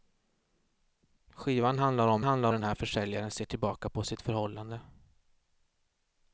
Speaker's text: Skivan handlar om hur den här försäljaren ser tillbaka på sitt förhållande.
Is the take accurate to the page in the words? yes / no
no